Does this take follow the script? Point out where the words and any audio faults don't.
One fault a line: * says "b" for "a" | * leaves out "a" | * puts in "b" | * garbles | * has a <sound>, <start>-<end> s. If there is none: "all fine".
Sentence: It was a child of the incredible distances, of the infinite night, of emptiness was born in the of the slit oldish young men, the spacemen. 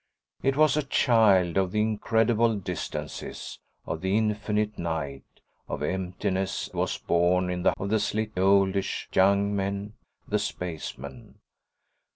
all fine